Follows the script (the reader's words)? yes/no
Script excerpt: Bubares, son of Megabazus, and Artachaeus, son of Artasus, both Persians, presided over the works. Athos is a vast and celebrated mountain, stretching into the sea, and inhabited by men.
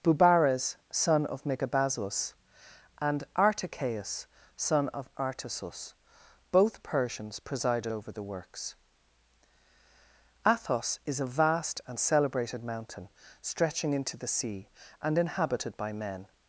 yes